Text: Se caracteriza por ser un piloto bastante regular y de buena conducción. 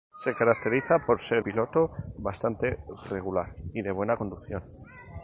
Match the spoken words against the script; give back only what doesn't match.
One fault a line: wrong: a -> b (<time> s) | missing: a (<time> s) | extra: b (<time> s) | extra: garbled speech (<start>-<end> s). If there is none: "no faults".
missing: un (1.4 s)